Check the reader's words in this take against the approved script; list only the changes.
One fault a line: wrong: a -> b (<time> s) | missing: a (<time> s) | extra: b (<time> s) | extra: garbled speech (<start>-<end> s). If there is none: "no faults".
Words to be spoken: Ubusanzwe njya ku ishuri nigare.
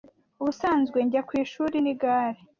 no faults